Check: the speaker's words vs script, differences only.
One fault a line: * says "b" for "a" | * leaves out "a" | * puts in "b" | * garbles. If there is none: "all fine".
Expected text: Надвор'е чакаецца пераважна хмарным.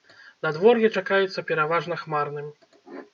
all fine